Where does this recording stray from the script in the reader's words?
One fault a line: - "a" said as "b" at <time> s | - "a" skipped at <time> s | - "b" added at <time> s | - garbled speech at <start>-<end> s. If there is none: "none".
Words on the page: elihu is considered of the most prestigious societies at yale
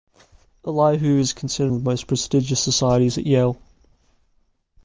none